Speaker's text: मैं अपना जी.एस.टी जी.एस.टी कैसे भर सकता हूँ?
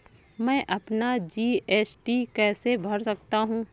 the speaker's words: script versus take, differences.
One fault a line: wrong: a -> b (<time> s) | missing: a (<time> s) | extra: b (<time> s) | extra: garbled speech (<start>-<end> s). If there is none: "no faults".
missing: जी.एस.टी (2.2 s)